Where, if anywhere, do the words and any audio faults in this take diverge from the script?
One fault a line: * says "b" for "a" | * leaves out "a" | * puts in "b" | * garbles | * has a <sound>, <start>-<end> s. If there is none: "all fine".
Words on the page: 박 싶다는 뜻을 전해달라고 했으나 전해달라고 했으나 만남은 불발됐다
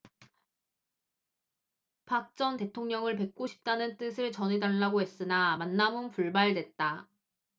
* puts in "전 대통령을 뵙고"
* leaves out "전해달라고 했으나"